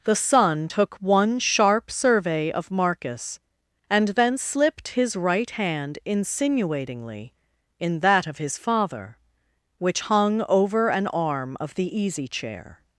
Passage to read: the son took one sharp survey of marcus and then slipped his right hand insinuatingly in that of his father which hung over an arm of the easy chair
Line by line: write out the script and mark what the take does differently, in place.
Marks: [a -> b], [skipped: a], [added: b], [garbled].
the son took one sharp survey of marcus and then slipped his right hand insinuatingly in that of his father which hung over an arm of the easy chair